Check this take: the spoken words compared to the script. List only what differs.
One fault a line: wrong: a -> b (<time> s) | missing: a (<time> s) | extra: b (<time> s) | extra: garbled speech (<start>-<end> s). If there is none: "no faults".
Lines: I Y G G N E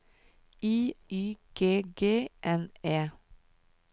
no faults